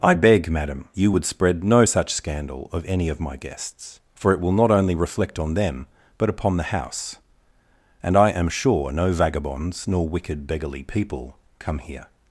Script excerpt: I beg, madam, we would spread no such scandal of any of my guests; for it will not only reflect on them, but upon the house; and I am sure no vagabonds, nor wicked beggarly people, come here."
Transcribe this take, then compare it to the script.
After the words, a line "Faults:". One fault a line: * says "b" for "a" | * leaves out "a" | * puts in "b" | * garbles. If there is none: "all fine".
I beg, madam, you would spread no such scandal of any of my guests; for it will not only reflect on them, but upon the house; and I am sure no vagabonds, nor wicked beggarly people, come here."
Faults:
* says "you" for "we"